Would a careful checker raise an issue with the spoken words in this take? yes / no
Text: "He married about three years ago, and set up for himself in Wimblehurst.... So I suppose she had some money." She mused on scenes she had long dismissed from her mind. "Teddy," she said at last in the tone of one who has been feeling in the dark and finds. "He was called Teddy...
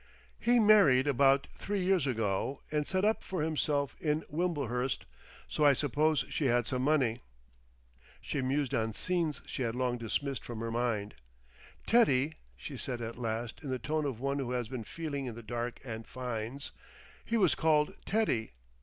no